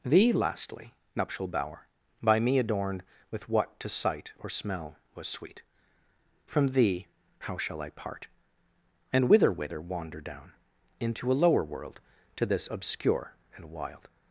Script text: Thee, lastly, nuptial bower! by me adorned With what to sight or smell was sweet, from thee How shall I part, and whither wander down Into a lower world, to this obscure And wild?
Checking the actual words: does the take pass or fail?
fail